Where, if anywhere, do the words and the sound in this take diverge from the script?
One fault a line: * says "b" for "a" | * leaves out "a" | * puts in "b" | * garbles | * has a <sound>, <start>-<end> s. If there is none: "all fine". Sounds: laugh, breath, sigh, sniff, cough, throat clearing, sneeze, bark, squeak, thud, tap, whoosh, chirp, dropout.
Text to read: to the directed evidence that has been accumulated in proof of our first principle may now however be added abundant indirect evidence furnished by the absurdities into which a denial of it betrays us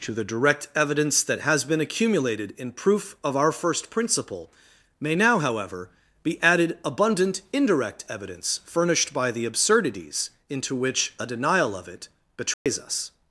* says "direct" for "directed"
* has a dropout, 12.5-12.7 s